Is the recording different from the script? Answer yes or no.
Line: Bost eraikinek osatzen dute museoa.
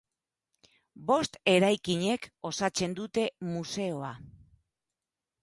no